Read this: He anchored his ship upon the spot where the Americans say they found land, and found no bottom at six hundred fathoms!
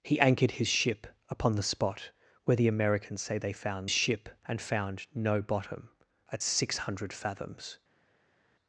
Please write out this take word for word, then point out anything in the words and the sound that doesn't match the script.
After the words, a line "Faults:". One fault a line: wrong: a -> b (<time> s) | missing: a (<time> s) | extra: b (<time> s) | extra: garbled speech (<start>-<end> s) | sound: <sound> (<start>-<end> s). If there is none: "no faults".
He anchored his ship upon the spot where the Americans say they found ship, and found no bottom at six hundred fathoms!
Faults:
wrong: land -> ship (3.9 s)